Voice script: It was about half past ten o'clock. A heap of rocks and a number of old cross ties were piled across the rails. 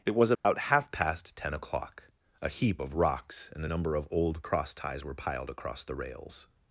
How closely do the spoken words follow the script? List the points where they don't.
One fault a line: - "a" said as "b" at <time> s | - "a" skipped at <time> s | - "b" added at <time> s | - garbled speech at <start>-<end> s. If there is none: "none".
none